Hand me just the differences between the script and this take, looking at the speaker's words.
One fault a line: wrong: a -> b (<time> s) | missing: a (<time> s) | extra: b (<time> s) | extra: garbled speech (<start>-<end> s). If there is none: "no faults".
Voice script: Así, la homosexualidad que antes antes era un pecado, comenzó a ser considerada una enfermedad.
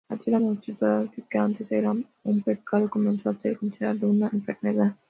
missing: antes (1.7 s)